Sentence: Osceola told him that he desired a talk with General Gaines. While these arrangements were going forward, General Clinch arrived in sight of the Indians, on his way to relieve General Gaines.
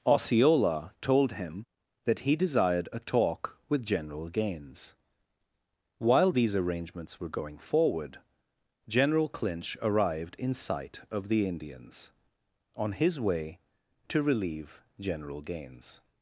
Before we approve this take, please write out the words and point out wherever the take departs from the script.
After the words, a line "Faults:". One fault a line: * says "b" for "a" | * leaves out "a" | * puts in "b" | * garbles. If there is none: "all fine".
Osceola told him that he desired a talk with General Gaines. While these arrangements were going forward, General Clinch arrived in sight of the Indians, on his way to relieve General Gaines.
Faults:
all fine